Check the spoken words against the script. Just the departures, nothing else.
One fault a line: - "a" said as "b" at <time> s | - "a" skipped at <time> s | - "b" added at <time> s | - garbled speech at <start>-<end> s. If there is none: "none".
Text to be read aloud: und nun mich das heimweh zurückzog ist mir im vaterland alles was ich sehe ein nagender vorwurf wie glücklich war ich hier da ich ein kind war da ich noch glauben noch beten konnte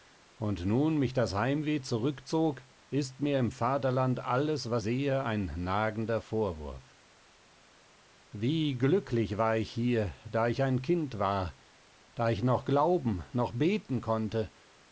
- "ich" skipped at 4.8 s